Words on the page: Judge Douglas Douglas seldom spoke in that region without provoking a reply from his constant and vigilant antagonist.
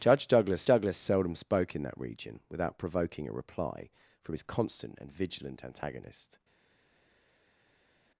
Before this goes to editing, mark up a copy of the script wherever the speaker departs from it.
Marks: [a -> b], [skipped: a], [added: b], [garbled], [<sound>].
Judge Douglas Douglas seldom spoke in that region without provoking a reply from his constant and vigilant antagonist.